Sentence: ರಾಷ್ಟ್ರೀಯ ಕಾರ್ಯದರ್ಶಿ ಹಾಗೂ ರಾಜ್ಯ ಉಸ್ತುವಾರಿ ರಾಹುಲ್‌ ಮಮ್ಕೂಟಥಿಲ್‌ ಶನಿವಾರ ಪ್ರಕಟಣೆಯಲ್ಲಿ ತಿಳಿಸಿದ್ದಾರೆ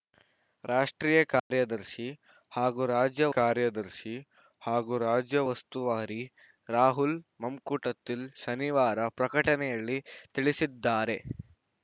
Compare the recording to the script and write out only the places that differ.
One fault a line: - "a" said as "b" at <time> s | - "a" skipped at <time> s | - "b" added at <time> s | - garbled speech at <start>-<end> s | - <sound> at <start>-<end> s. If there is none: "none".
- dropout at 1.4-1.5 s
- "ಕಾರ್ಯದರ್ಶಿ ಹಾಗೂ ರಾಜ್ಯ" added at 3.4 s